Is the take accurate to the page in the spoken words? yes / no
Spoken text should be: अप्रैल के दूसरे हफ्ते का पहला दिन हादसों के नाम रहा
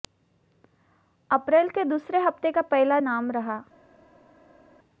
no